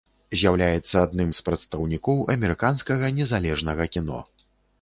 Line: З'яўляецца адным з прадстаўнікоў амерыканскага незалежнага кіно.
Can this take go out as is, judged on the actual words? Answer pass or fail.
pass